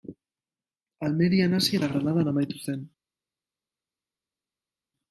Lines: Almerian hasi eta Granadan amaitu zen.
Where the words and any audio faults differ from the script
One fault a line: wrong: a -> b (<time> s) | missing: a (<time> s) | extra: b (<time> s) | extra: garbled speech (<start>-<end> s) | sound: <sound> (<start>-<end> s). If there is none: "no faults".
no faults